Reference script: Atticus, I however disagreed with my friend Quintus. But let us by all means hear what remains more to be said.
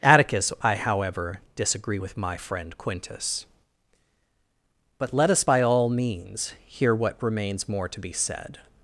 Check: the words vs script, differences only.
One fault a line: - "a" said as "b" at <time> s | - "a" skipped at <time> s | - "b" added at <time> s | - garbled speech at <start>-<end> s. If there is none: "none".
- "disagreed" said as "disagree" at 1.6 s